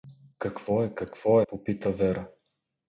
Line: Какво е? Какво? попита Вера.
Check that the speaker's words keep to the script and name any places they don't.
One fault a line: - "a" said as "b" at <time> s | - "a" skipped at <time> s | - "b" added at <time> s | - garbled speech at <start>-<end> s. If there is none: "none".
none